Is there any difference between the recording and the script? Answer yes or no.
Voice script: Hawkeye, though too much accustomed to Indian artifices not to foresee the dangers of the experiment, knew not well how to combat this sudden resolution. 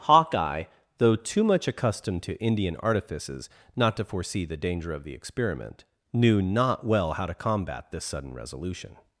yes